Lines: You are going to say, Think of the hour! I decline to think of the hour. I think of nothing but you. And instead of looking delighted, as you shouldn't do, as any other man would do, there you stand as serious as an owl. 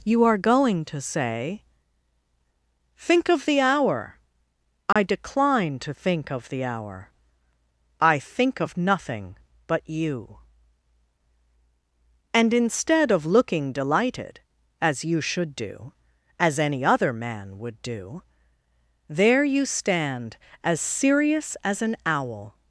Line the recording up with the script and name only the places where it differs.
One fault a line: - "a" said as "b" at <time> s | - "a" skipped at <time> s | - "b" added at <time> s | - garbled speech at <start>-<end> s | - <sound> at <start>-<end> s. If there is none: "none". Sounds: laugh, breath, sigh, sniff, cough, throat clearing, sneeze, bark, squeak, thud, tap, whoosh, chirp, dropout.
- dropout at 4.9-5.0 s
- "shouldn't" said as "should" at 15.2 s